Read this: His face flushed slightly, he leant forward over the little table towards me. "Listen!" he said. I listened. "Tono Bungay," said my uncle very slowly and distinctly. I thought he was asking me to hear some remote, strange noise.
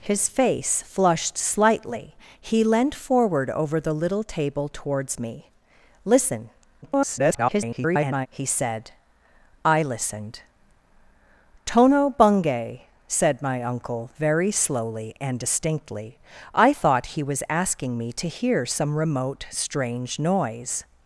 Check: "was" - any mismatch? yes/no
no